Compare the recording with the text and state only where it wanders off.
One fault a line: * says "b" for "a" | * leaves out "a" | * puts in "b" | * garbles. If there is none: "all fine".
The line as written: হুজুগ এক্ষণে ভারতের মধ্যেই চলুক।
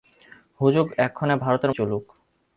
* leaves out "মধ্যেই"